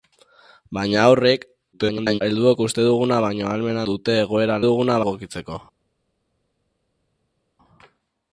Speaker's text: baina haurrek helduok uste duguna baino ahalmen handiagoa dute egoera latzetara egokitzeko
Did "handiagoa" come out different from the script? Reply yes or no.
yes